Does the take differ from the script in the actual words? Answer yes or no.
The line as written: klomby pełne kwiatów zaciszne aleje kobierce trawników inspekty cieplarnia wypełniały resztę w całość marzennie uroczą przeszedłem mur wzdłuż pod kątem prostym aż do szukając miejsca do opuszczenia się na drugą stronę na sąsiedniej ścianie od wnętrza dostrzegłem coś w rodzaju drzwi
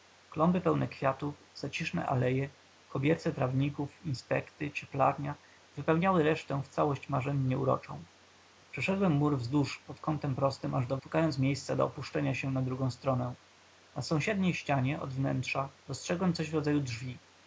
no